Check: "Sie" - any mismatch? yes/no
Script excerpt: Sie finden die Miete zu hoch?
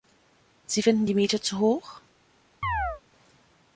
no